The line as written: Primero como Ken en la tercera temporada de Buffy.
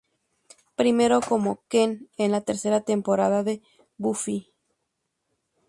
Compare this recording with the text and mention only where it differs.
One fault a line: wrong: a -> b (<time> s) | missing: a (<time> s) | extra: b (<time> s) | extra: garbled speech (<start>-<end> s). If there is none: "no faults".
no faults